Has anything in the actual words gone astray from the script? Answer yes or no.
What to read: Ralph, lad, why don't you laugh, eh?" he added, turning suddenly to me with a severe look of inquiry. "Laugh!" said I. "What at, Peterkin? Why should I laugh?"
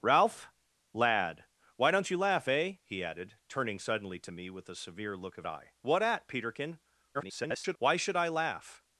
yes